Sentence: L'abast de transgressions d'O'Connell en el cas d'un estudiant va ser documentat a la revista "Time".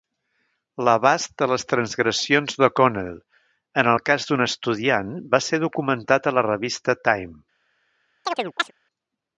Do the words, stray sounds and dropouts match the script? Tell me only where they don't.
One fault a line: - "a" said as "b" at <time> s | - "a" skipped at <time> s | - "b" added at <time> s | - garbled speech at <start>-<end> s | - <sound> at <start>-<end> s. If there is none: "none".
- "les" added at 1.5 s
- chirp at 8.3-8.7 s